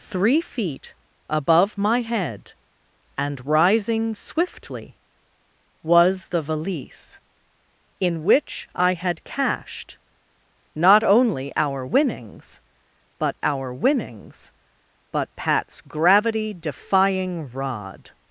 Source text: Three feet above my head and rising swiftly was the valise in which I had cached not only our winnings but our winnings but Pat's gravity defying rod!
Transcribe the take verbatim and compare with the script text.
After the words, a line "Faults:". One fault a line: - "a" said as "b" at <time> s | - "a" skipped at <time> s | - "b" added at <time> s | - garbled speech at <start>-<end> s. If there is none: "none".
Three feet above my head and rising swiftly was the valise in which I had cached not only our winnings but our winnings but Pat's gravity defying rod!
Faults:
none